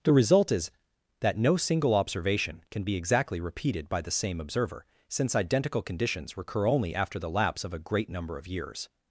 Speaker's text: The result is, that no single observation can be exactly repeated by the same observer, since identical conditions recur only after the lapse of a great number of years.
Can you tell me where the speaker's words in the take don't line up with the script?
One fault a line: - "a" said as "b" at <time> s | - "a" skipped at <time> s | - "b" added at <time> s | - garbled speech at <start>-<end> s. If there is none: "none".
none